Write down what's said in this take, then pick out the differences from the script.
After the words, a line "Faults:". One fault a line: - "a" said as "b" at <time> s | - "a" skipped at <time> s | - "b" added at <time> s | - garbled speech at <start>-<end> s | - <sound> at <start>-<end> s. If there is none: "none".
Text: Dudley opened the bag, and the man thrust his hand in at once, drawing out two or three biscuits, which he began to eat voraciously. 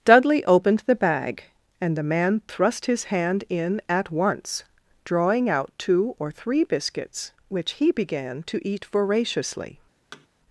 Dudley opened the bag, and the man thrust his hand in at once, drawing out two or three biscuits, which he began to eat voraciously.
Faults:
- thud at 10.1-10.3 s